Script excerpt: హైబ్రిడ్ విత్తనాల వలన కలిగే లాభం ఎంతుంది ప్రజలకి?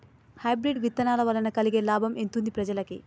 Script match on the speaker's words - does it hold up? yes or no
yes